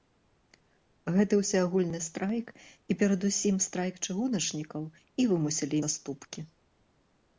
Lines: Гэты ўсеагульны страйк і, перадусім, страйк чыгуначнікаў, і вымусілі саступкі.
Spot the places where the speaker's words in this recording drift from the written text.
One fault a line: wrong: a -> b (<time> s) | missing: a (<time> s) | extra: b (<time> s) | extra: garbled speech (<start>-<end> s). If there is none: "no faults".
no faults